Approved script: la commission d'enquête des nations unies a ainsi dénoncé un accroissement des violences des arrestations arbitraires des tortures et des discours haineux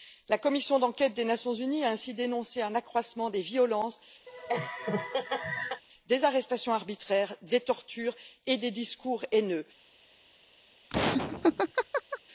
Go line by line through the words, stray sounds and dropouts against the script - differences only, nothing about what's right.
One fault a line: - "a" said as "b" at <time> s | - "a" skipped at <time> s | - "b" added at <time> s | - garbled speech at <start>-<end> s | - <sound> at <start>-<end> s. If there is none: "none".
- laugh at 4.3-5.8 s
- laugh at 10.9-12.2 s